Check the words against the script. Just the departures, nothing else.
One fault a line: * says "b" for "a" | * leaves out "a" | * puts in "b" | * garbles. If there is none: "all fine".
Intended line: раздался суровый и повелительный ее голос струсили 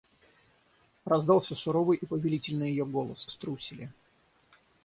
all fine